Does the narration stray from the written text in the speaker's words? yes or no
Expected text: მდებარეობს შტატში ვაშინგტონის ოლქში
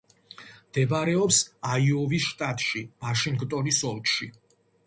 yes